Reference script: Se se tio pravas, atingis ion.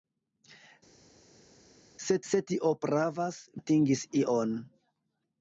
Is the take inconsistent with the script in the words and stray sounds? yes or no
no